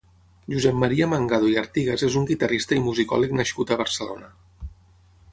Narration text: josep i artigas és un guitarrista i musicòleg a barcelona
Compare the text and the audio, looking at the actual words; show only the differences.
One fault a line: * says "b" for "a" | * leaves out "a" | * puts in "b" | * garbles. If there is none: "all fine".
* puts in "maria mangado"
* puts in "nascut"